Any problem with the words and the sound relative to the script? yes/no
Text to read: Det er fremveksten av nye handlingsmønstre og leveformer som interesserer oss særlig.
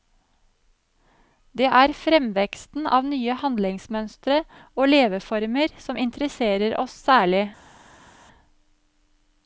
no